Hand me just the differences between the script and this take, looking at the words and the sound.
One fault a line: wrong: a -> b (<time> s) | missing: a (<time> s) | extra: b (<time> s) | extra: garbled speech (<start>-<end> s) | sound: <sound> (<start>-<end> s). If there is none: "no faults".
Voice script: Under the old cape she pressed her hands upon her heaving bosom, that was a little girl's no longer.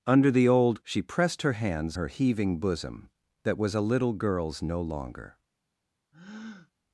missing: cape (0.8 s)
missing: upon (2.0 s)
sound: breath (6.1-6.7 s)